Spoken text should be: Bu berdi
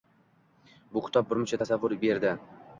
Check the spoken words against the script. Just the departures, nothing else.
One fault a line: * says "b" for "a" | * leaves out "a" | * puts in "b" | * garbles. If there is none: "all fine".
* puts in "kitob birmuncha tasavvur"